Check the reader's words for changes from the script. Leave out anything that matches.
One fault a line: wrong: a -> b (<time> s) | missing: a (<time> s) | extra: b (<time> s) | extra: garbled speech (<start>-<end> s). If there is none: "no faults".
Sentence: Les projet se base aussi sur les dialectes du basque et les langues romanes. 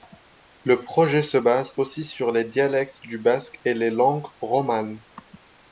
wrong: Les -> Le (0.6 s)